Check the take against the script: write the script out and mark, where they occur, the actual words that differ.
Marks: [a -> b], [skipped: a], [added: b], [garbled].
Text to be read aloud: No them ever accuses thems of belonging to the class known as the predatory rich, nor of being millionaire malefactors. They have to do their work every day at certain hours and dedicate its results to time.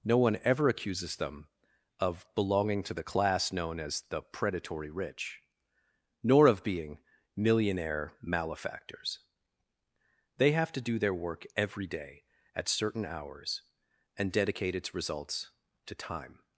No [them -> one] ever accuses [thems -> them] of belonging to the class known as the predatory rich, nor of being millionaire malefactors. They have to do their work every day at certain hours and dedicate its results to time.